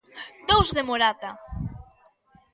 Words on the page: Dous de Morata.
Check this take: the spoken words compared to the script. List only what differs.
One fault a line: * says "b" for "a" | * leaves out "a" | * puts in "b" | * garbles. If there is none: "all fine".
all fine